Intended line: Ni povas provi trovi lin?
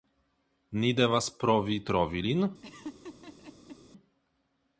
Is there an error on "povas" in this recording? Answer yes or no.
yes